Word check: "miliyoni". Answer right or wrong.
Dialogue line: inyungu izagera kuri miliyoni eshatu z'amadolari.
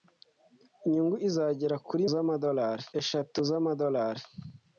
wrong